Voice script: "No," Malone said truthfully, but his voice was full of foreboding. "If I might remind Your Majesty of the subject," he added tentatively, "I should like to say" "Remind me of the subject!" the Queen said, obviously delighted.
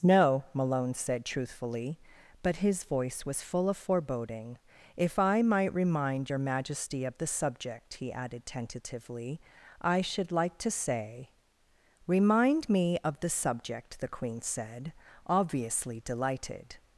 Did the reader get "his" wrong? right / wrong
right